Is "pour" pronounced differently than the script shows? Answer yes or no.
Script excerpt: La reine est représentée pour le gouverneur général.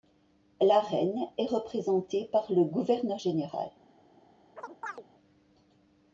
yes